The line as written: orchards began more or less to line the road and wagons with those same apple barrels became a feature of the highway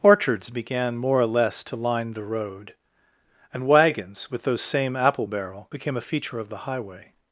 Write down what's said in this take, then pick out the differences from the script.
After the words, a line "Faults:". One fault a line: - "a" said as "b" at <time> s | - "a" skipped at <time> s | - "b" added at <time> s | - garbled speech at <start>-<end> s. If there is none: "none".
orchards began more or less to line the road and wagons with those same apple barrel became a feature of the highway
Faults:
- "barrels" said as "barrel" at 5.3 s